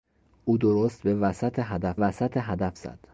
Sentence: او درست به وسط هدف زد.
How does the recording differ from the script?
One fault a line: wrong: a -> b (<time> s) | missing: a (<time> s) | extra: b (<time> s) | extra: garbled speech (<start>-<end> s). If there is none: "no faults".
extra: وسط هدف (1.9 s)